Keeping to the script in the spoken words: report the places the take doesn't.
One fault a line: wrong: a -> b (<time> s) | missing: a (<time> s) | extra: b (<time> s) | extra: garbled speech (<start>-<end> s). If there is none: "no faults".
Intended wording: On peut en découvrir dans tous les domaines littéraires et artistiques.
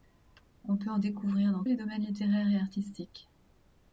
missing: tous (1.6 s)